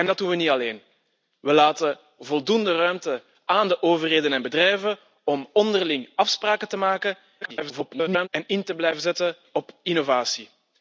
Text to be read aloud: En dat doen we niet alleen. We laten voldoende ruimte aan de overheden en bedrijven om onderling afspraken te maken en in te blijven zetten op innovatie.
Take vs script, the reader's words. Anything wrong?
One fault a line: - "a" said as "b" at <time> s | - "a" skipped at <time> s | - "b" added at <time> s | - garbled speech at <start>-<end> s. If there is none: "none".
- garbled speech at 7.4-8.3 s